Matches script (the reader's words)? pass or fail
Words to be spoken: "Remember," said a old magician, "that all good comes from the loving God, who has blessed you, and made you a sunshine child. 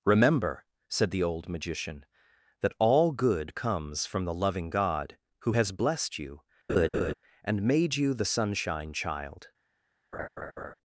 fail